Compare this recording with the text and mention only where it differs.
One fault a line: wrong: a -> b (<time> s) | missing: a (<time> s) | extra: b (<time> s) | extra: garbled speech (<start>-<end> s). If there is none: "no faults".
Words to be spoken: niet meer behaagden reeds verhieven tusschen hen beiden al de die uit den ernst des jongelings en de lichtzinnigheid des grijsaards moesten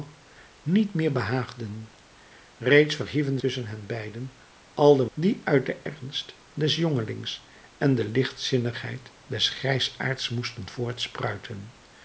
no faults